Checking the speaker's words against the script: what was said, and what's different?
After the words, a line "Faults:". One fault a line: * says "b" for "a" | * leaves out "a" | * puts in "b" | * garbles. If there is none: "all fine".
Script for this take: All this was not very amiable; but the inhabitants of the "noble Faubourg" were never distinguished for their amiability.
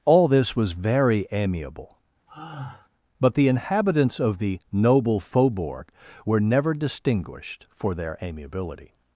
All this was very amiable; but the inhabitants of the "noble Faubourg" were never distinguished for their amiability.
Faults:
* leaves out "not"